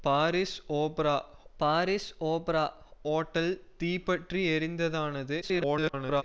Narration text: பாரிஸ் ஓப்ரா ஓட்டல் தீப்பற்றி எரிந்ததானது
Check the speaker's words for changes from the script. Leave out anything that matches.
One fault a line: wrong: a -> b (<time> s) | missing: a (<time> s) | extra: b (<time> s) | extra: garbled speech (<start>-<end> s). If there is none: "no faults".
extra: பாரிஸ் ஓப்ரா (1.6 s)
extra: garbled speech (5.4-6.2 s)